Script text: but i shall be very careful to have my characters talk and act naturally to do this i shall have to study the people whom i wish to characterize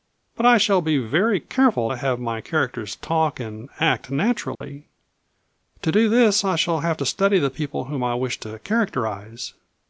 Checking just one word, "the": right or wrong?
right